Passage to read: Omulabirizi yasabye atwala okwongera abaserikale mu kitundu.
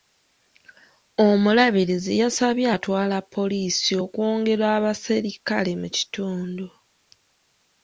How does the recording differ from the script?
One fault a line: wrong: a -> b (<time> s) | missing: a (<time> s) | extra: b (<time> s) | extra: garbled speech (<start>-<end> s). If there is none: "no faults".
extra: poliisi (3.3 s)